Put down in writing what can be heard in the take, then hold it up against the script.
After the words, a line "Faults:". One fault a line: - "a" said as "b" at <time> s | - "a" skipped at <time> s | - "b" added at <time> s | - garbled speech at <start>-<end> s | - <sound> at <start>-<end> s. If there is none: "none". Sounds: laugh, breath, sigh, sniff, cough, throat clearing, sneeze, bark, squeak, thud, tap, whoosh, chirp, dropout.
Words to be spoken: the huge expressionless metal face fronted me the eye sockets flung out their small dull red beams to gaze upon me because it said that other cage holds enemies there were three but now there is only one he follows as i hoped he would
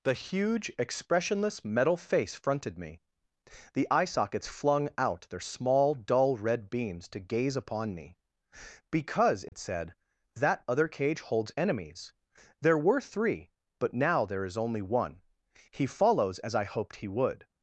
the huge expressionless metal face fronted me the eye sockets flung out their small dull red beams to gaze upon me because it said that other cage holds enemies there were three but now there is only one he follows as i hoped he would
Faults:
- dropout at 9.5-9.5 s